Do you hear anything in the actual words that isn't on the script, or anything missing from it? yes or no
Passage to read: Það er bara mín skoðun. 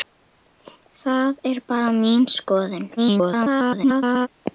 yes